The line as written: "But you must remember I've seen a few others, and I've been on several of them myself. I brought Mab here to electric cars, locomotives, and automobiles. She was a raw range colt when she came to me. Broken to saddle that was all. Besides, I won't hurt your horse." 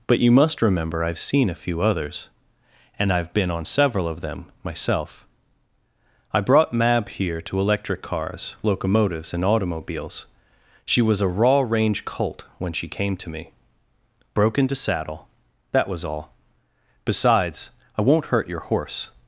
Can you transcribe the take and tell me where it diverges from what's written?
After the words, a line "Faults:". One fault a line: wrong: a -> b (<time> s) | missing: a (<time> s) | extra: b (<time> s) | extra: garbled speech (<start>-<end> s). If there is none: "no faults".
"But you must remember I've seen a few others, and I've been on several of them myself. I brought Mab here to electric cars, locomotives, and automobiles. She was a raw range colt when she came to me. Broken to saddle that was all. Besides, I won't hurt your horse."
Faults:
no faults